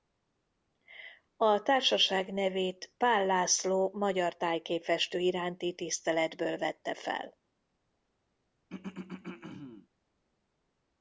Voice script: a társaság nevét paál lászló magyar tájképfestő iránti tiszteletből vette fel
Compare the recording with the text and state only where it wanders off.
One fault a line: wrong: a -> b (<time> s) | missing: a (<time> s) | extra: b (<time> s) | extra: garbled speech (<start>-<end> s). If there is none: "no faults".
no faults